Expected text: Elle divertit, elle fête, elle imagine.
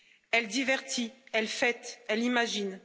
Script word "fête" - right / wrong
right